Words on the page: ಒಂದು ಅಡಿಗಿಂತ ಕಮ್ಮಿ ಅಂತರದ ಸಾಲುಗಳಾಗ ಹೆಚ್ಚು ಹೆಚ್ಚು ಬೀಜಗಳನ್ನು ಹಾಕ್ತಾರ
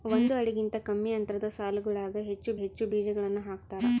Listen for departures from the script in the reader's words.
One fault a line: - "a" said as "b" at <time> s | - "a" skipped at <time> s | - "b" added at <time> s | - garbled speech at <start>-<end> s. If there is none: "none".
none